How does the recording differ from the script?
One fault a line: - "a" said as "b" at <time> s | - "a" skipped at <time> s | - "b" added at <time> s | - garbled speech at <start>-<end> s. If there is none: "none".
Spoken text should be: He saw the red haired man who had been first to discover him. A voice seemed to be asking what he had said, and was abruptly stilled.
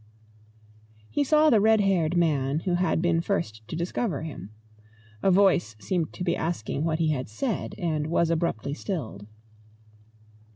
none